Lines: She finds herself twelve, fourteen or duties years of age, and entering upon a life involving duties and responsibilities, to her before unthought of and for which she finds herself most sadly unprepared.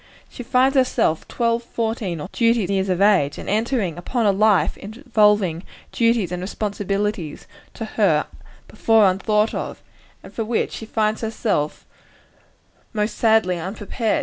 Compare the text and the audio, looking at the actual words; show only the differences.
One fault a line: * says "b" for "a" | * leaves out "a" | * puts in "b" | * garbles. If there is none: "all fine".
all fine